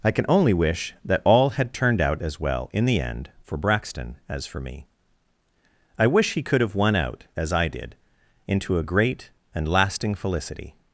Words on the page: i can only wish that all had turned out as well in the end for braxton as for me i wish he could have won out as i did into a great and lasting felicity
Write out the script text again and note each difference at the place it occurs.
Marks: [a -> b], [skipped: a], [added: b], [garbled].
i can only wish that all had turned out as well in the end for braxton as for me i wish he could have won out as i did into a great and lasting felicity